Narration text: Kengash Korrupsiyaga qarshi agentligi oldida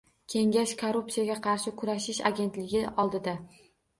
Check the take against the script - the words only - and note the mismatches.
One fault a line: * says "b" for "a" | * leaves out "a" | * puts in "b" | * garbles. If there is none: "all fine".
* puts in "kurashish"